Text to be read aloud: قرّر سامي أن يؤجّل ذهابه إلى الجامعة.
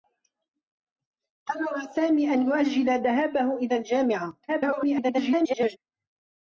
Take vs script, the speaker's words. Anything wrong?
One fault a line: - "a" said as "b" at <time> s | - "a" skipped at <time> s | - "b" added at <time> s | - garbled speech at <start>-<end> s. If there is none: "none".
- garbled speech at 4.5-5.8 s